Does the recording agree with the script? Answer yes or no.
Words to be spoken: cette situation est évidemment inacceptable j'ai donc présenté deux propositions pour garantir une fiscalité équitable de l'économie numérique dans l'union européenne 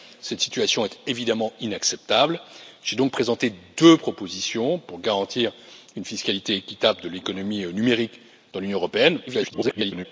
no